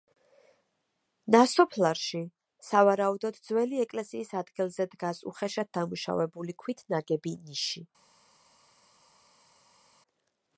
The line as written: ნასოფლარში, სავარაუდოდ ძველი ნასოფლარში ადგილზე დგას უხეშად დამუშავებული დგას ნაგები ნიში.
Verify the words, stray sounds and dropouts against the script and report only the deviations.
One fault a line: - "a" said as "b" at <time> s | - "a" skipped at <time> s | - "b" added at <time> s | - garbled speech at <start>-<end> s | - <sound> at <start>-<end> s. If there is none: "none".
- "ნასოფლარში" said as "ეკლესიის" at 3.9 s
- "დგას" said as "ქვით" at 6.6 s